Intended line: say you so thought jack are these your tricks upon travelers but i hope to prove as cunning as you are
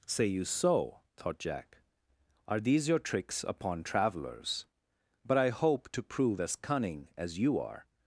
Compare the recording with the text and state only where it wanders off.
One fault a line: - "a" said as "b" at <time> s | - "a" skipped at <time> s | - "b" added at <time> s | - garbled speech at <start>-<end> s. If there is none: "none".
none